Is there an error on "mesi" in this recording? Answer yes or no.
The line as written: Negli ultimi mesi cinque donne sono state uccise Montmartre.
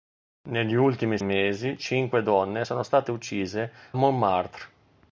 no